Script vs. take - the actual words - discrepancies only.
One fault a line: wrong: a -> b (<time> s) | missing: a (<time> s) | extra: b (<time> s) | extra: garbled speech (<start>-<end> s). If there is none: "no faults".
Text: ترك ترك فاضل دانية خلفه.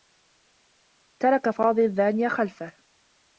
missing: ترك (1.5 s)